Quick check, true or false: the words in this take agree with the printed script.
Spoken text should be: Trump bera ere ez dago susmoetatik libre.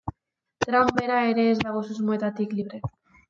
true